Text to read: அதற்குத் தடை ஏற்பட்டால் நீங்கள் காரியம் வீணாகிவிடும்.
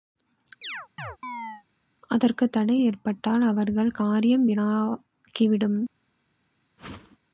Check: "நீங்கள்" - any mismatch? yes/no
yes